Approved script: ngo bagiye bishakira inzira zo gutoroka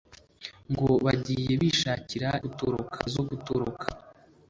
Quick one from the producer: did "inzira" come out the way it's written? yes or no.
no